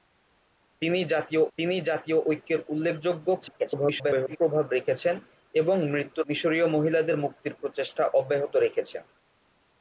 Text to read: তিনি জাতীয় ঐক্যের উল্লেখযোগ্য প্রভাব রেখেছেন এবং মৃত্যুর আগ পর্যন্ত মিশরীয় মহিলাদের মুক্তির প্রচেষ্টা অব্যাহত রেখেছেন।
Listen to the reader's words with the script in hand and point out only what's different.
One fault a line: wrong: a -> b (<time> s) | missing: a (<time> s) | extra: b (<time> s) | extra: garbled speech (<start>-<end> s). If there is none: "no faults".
extra: তিনি জাতীয় (1.6 s)
extra: garbled speech (3.4-4.4 s)
missing: আগ পর্যন্ত (6.3 s)